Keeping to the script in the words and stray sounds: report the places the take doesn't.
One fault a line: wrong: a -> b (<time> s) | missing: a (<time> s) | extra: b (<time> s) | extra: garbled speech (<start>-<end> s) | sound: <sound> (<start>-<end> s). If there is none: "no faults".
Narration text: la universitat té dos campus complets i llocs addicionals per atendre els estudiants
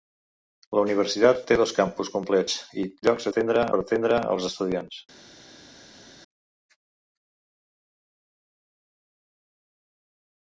wrong: addicionals -> atendre (3.3 s)